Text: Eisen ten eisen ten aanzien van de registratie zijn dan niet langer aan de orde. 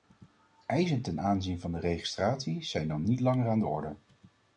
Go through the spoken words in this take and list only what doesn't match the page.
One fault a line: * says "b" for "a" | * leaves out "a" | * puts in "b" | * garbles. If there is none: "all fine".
* leaves out "eisen ten"